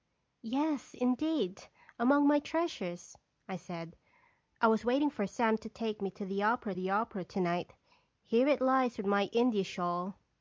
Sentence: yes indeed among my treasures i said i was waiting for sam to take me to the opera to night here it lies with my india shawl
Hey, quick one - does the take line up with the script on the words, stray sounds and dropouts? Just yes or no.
no